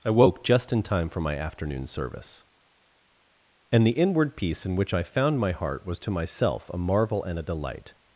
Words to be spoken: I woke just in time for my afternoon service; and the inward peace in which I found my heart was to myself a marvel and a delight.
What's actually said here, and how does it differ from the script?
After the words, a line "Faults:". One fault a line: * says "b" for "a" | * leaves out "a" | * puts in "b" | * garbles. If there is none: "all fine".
I woke just in time for my afternoon service; and the inward peace in which I found my heart was to myself a marvel and a delight.
Faults:
all fine